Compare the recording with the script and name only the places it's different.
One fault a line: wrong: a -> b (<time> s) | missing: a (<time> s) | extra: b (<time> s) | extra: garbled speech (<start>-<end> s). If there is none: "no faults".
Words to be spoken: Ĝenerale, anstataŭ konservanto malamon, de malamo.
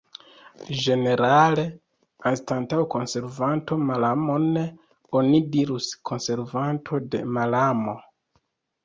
extra: oni dirus konservanto (5.2 s)